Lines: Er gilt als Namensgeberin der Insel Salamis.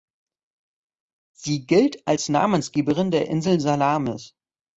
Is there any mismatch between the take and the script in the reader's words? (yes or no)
yes